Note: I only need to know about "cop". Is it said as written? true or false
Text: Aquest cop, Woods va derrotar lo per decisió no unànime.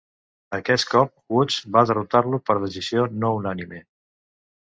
true